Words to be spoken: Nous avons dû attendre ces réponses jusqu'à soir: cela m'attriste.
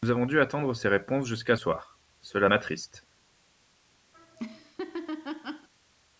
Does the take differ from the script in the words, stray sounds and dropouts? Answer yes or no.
yes